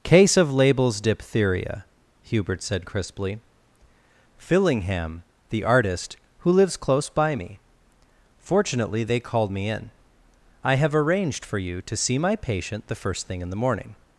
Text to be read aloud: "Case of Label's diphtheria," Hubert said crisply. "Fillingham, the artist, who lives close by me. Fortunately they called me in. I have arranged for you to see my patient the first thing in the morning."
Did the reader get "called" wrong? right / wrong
right